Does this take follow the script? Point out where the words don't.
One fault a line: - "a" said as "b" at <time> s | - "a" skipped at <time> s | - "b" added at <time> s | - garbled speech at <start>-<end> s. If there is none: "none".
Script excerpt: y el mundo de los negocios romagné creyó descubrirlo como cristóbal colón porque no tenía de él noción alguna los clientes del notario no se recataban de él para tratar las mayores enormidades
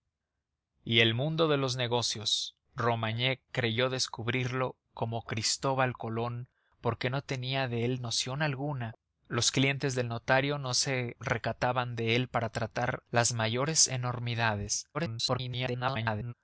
- garbled speech at 14.9-16.3 s